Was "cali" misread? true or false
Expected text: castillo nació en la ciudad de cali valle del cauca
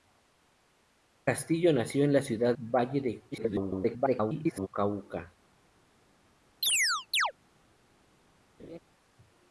true